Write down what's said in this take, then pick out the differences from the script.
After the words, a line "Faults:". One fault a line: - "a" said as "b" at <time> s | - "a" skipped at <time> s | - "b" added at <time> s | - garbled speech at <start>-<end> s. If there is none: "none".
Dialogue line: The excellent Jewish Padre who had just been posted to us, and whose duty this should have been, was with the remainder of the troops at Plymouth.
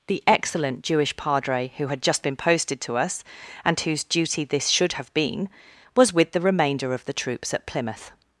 The excellent Jewish Padre who had just been posted to us, and whose duty this should have been, was with the remainder of the troops at Plymouth.
Faults:
none